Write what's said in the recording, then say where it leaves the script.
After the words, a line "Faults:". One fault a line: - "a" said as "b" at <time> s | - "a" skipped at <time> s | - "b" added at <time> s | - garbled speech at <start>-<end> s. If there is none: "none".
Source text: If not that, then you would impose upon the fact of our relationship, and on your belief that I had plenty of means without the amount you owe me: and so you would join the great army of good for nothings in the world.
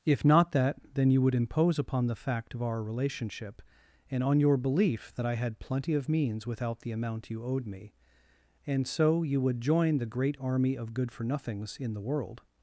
If not that, then you would impose upon the fact of our relationship, and on your belief that I had plenty of means without the amount you owed me: and so you would join the great army of good for nothings in the world.
Faults:
- "owe" said as "owed" at 7.4 s